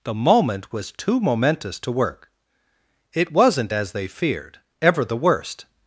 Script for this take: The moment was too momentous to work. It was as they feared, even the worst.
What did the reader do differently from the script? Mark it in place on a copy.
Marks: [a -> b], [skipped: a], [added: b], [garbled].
The moment was too momentous to work. It [was -> wasn't] as they feared, [even -> ever] the worst.